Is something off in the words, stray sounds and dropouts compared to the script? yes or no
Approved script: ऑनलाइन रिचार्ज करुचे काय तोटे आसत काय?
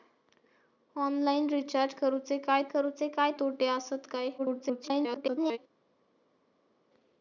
yes